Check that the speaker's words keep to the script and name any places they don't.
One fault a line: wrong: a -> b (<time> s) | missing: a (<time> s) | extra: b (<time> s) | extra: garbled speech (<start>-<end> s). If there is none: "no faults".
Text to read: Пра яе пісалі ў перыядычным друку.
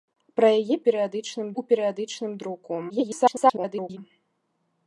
wrong: пісалі -> перыядычным (0.9 s)
extra: garbled speech (2.9-4.0 s)